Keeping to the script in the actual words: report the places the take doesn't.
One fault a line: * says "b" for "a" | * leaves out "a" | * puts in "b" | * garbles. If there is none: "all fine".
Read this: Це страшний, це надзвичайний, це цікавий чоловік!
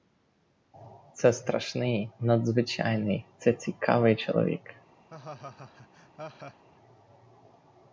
* leaves out "це"